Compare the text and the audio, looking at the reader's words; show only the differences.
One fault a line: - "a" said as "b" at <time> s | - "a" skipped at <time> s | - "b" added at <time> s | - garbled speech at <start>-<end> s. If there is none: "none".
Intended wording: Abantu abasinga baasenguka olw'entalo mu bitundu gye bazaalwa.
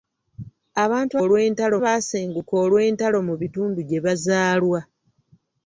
- "abasinga" said as "olw'entalo" at 1.2 s